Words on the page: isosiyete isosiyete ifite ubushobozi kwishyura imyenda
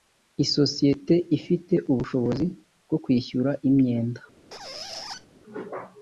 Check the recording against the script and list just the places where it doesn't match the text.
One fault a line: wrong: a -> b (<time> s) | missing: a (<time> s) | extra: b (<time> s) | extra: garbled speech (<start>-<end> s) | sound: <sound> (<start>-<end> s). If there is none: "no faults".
missing: isosiyete (1.1 s)
extra: bwo (2.8 s)
sound: squeak (4.5-5.3 s)